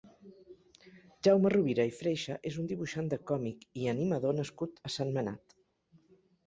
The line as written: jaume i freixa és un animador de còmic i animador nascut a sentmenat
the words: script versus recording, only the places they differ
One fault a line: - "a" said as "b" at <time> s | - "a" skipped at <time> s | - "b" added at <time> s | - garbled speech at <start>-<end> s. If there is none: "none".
- "rovira" added at 1.6 s
- "animador" said as "dibuixant" at 2.7 s